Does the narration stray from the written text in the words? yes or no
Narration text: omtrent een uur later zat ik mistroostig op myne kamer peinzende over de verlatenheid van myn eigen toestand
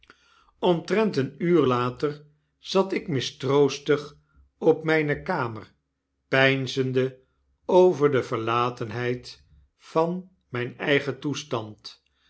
no